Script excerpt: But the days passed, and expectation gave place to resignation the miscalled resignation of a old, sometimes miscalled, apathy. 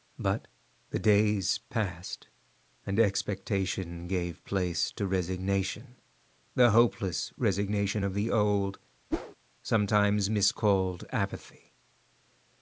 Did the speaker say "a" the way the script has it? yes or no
no